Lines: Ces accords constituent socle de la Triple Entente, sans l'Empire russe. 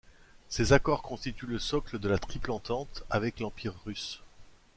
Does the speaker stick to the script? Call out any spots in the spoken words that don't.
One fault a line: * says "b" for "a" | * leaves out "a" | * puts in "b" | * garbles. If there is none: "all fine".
* puts in "le"
* says "avec" for "sans"